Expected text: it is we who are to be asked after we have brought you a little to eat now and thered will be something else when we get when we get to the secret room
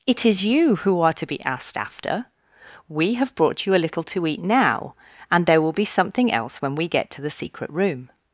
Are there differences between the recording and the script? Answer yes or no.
yes